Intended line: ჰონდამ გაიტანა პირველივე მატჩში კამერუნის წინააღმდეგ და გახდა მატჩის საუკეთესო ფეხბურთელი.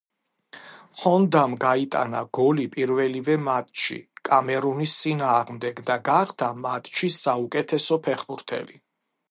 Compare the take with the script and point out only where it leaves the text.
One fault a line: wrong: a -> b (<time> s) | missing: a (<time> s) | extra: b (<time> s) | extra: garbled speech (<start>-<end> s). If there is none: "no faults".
extra: გოლი (2.4 s)